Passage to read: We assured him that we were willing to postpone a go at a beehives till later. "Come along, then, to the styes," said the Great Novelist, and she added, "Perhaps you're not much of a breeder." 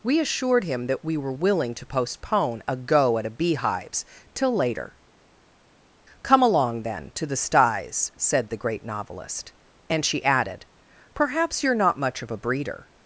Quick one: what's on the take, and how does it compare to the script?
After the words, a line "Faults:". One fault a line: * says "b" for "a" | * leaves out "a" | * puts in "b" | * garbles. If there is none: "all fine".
We assured him that we were willing to postpone a go at a beehives till later. "Come along, then, to the styes," said the Great Novelist, and she added, "Perhaps you're not much of a breeder."
Faults:
all fine